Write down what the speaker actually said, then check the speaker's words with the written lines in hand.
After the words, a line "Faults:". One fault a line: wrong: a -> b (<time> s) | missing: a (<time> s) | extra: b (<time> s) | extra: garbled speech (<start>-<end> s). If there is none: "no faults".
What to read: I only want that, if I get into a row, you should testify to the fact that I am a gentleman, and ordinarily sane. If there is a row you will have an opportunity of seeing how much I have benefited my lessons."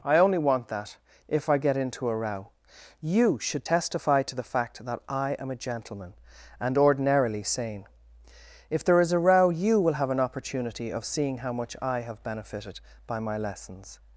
I only want that, if I get into a row, you should testify to the fact that I am a gentleman, and ordinarily sane. If there is a row you will have an opportunity of seeing how much I have benefited by my lessons."
Faults:
extra: by (13.1 s)